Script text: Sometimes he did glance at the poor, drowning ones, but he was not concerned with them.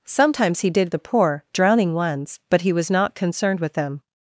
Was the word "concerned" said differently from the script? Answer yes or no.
no